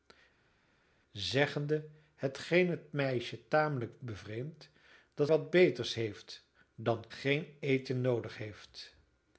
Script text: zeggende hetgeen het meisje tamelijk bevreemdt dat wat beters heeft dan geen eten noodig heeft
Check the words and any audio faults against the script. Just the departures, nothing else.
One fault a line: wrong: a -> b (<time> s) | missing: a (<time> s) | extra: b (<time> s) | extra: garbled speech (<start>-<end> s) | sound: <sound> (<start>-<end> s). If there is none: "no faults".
no faults